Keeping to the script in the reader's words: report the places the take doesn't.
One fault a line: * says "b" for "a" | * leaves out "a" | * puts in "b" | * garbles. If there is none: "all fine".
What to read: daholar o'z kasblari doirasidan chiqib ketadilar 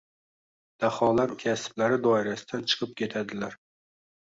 * leaves out "o'z"